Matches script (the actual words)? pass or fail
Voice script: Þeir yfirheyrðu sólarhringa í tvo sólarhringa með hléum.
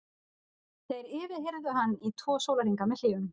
fail